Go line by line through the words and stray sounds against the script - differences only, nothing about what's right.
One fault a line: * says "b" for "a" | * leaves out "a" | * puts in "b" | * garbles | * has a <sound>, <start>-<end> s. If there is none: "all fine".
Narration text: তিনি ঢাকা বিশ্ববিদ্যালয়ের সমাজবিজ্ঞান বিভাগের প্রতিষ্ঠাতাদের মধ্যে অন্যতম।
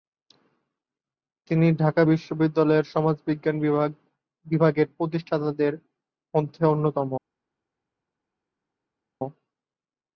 all fine